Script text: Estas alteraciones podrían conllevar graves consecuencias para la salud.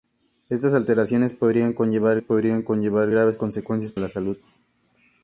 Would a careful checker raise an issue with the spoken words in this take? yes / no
yes